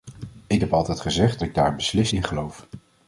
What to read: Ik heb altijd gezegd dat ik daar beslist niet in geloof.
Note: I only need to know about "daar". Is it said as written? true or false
true